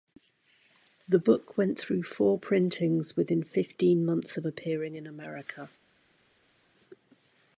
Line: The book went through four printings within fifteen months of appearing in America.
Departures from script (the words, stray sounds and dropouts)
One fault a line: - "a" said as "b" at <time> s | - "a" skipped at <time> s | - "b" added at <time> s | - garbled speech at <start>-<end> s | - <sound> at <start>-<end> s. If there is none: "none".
none